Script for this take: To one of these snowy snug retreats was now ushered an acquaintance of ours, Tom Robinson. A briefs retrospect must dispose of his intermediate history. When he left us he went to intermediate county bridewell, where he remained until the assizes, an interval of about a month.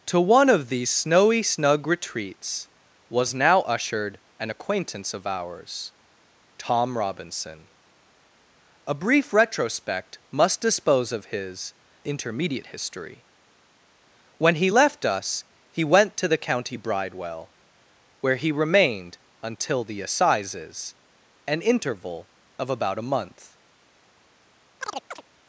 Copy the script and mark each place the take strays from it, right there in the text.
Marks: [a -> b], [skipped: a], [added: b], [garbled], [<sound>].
To one of these snowy snug retreats was now ushered an acquaintance of ours, Tom Robinson. A [briefs -> brief] retrospect must dispose of his intermediate history. When he left us he went to [intermediate -> the] county bridewell, where he remained until the assizes, an interval of about a month. [chirp]